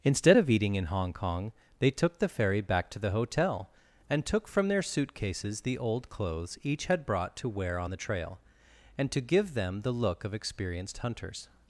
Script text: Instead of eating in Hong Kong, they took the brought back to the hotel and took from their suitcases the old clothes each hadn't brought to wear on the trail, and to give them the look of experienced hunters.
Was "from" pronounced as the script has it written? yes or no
yes